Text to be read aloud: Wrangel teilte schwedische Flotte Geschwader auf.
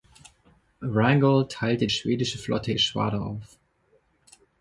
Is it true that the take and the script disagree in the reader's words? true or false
false